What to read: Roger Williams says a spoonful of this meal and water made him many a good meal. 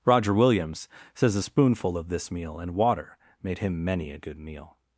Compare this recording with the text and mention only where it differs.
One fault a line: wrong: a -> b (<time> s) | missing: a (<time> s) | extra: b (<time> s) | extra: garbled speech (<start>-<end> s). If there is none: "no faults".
no faults